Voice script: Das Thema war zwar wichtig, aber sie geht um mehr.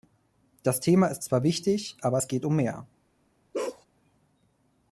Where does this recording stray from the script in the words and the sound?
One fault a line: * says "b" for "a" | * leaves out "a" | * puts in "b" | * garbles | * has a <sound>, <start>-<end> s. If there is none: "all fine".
* says "ist" for "war"
* says "es" for "sie"
* has a bark, 3.5-3.9 s